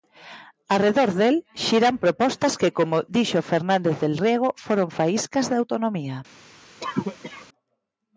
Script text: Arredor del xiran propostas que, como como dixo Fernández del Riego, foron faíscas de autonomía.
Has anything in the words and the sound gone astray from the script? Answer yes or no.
yes